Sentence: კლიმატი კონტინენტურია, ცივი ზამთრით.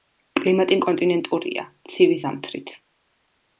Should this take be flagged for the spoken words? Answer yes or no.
no